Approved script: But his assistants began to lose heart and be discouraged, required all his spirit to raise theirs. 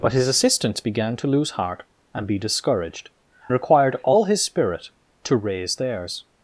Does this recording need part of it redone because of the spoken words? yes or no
no